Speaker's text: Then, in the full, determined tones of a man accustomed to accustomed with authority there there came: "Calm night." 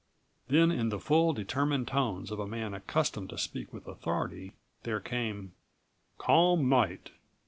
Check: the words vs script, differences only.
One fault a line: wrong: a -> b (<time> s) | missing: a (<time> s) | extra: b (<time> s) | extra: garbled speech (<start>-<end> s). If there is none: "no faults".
wrong: accustomed -> speak (3.4 s)
missing: there (5.0 s)